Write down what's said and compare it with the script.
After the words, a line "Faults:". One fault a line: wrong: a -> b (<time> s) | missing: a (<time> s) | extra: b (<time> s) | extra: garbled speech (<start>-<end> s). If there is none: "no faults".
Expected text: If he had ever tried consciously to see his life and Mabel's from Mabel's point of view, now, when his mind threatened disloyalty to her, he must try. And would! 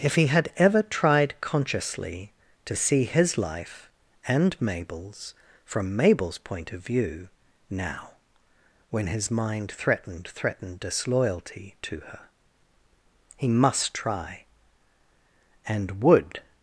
If he had ever tried consciously to see his life and Mabel's from Mabel's point of view, now, when his mind threatened threatened disloyalty to her, he must try. And would!
Faults:
extra: threatened (10.3 s)